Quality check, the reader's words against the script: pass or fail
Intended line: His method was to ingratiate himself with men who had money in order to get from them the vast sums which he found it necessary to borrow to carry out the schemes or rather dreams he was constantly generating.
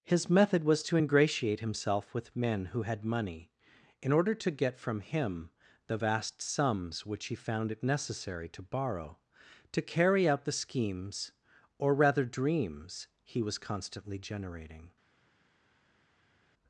fail